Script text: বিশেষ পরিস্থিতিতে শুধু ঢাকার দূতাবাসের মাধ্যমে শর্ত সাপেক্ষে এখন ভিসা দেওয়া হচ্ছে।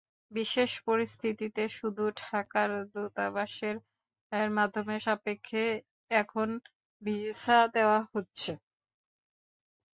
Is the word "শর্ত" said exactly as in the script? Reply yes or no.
no